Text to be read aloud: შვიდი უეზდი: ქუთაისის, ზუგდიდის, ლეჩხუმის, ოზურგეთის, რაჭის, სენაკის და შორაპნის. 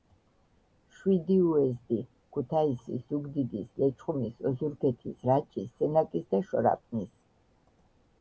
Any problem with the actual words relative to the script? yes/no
no